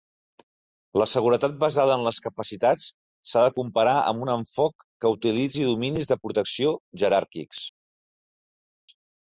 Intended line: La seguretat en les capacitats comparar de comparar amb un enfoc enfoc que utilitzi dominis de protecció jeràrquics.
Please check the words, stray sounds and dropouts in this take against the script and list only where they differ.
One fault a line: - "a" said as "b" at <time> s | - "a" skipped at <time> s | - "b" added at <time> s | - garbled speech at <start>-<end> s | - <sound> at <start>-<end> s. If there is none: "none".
- "basada" added at 1.6 s
- "comparar" said as "s"ha" at 3.3 s
- "enfoc" skipped at 4.9 s